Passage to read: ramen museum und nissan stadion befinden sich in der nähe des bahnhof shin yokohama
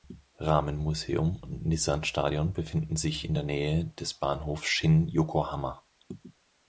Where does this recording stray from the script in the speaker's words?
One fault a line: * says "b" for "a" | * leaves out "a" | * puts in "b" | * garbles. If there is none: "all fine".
all fine